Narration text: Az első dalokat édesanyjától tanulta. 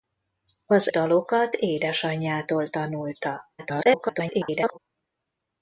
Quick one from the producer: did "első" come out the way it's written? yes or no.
no